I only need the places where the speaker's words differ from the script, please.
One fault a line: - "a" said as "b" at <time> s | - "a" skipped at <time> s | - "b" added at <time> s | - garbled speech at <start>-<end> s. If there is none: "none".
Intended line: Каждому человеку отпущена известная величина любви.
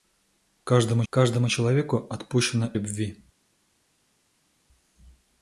- "каждому" added at 1.1 s
- "известная величина" skipped at 2.7 s